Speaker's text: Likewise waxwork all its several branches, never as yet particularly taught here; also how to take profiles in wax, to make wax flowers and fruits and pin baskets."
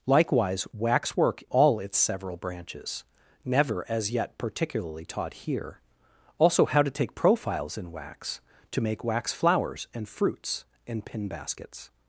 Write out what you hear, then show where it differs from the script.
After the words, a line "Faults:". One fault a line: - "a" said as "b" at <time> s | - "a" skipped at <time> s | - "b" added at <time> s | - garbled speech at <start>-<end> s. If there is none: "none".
Likewise waxwork all its several branches, never as yet particularly taught here; also how to take profiles in wax, to make wax flowers and fruits and pin baskets."
Faults:
none